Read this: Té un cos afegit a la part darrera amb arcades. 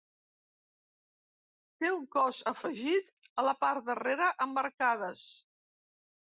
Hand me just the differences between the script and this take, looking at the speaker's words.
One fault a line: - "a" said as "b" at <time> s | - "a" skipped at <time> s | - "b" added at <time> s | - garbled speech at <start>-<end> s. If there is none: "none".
none